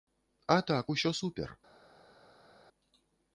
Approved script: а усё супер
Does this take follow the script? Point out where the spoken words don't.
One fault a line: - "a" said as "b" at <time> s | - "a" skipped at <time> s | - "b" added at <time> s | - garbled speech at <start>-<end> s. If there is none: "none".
- "так" added at 0.7 s